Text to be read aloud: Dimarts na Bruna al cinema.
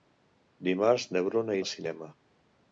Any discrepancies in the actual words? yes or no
no